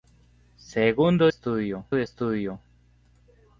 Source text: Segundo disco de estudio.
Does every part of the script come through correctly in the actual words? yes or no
no